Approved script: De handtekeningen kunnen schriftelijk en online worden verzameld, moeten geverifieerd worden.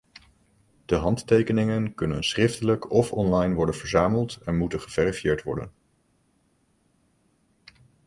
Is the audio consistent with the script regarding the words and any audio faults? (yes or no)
no